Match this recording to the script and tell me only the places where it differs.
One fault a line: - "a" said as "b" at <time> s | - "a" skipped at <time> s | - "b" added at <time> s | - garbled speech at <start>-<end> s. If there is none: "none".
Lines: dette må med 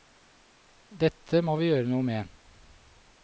- "vi gjøre noe" added at 1.6 s